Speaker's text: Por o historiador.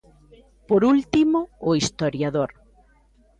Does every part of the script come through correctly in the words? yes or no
no